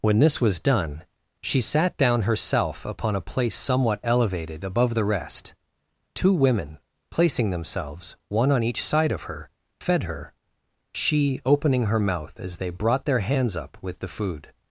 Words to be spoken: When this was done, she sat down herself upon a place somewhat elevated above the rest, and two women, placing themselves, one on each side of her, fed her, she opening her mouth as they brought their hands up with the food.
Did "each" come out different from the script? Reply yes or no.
no